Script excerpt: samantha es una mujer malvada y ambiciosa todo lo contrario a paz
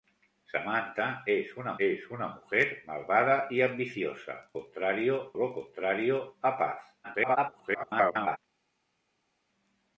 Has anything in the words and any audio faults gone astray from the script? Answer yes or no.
yes